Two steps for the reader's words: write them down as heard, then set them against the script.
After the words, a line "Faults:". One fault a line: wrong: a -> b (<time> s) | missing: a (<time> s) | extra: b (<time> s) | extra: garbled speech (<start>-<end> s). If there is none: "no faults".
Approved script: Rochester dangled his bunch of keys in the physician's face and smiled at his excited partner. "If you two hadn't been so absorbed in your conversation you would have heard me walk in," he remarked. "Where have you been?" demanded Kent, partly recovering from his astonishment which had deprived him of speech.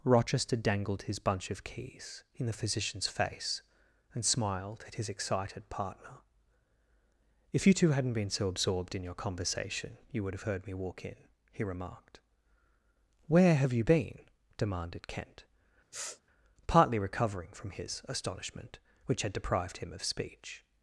Rochester dangled his bunch of keys in the physician's face and smiled at his excited partner. "If you two hadn't been so absorbed in your conversation you would have heard me walk in," he remarked. "Where have you been?" demanded Kent, partly recovering from his astonishment which had deprived him of speech.
Faults:
no faults